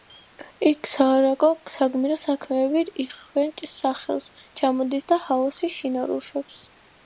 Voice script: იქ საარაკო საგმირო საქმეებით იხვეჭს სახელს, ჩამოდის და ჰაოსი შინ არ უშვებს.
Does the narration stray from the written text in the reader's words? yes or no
no